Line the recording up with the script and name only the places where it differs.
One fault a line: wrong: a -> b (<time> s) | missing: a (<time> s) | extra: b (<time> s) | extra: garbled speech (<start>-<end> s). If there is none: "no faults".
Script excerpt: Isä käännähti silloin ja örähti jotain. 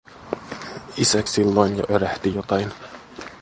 missing: käännähti (1.2 s)